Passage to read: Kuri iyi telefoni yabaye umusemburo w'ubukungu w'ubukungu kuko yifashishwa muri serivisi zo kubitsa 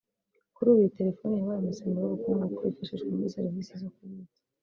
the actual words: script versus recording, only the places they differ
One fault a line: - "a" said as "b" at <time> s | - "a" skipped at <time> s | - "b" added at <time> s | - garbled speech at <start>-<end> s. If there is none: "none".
- "ubu" added at 0.7 s
- "w'ubukungu" skipped at 2.4 s